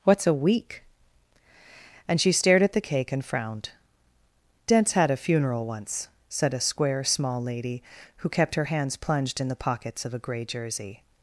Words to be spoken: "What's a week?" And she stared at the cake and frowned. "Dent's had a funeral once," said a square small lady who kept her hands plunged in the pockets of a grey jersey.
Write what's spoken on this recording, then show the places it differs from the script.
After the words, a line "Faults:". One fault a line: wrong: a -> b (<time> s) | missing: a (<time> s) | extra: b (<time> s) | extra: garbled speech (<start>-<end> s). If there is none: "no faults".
"What's a week?" And she stared at the cake and frowned. "Dent's had a funeral once," said a square small lady who kept her hands plunged in the pockets of a grey jersey.
Faults:
no faults